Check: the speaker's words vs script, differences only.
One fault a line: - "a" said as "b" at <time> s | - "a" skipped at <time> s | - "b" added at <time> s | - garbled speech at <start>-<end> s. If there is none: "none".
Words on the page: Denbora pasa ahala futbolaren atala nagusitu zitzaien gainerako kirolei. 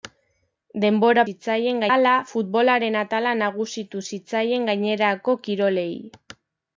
- "pasa" said as "zitzaien" at 1.3 s